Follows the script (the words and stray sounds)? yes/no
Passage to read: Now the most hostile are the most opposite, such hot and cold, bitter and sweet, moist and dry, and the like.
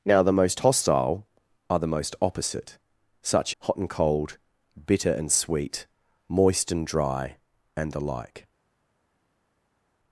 yes